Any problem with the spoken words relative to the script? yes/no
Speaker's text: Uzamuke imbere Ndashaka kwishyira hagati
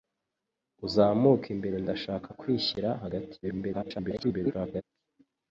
yes